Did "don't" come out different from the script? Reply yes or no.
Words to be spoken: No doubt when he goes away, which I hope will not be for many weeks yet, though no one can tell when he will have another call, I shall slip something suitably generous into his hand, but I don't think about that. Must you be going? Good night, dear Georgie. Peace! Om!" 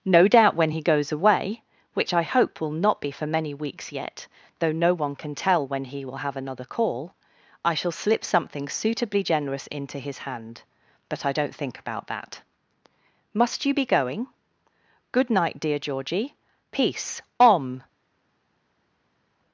no